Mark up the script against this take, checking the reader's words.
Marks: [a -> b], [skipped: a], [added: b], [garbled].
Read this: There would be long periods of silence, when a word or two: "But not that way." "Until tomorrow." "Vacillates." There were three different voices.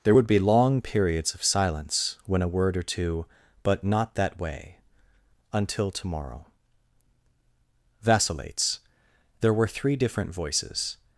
There would be long periods of silence, when a word or two: "But not that way." "Until tomorrow." "Vacillates." There were three different voices.